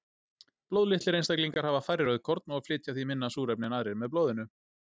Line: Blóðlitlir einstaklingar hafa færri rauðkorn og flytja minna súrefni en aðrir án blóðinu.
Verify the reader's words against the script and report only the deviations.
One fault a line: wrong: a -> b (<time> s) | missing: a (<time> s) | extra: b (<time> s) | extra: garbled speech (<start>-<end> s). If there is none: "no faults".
extra: því (3.0 s)
wrong: án -> með (4.0 s)